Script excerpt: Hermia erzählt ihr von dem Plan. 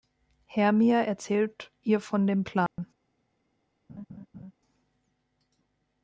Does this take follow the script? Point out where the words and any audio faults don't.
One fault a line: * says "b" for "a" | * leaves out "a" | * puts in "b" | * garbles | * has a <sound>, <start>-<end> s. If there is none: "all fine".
* has a dropout, 2.7-2.8 s
* has a laugh, 3.9-4.5 s